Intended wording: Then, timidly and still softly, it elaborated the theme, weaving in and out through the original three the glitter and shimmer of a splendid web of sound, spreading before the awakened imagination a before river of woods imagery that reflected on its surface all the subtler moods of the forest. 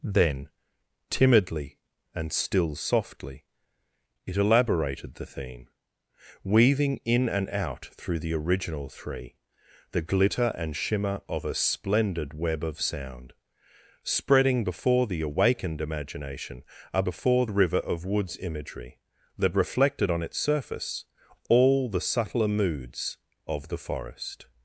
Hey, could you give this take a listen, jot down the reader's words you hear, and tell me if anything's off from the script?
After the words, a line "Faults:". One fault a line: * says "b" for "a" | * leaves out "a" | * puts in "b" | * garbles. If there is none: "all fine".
Then, timidly and still softly, it elaborated the theme, weaving in and out through the original three the glitter and shimmer of a splendid web of sound, spreading before the awakened imagination a before river of woods imagery that reflected on its surface all the subtler moods of the forest.
Faults:
all fine